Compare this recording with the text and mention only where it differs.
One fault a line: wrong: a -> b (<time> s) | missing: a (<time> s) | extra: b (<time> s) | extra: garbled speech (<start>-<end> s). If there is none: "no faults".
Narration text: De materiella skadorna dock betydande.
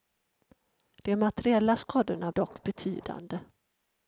no faults